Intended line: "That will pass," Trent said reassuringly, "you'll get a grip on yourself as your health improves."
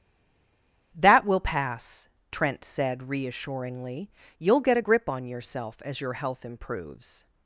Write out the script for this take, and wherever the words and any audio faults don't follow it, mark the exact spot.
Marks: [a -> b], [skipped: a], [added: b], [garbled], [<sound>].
"That will pass," Trent said reassuringly, "you'll get a grip on yourself as your health improves."